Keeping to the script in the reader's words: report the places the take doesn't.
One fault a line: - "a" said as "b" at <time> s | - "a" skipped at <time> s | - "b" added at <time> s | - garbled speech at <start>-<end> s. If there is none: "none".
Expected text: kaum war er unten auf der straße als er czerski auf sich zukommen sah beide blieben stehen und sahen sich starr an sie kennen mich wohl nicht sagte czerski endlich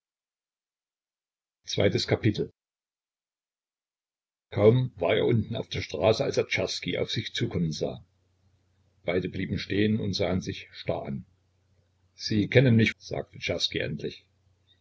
- "wohl nicht" skipped at 12.9 s